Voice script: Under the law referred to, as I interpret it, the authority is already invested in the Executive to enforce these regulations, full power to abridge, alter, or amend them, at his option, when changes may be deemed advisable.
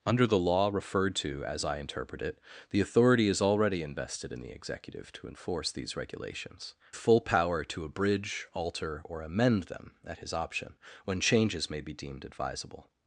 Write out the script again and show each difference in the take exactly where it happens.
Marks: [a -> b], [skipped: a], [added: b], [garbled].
Under the law referred to, as I interpret it, the authority is already invested in the Executive to enforce these regulations, full power to abridge, alter, or amend them, at his option, when changes may be deemed advisable.